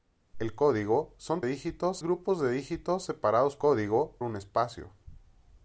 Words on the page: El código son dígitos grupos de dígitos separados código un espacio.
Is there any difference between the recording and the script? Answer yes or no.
no